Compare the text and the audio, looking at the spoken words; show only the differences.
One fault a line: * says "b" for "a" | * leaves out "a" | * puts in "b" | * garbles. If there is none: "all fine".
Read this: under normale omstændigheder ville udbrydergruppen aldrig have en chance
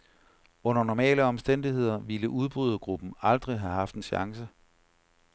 * puts in "haft"